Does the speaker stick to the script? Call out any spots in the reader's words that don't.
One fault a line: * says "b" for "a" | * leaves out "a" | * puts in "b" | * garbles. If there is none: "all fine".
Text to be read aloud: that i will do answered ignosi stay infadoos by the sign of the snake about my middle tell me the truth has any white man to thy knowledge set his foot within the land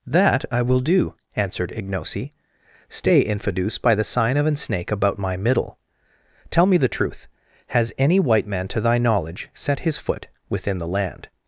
* says "an" for "the"